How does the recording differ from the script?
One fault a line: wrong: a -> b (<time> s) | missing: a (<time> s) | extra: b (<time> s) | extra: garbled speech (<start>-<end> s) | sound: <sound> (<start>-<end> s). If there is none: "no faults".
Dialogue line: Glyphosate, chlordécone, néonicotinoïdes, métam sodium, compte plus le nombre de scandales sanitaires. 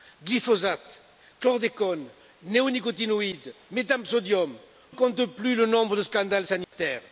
sound: dropout (6.6-6.7 s)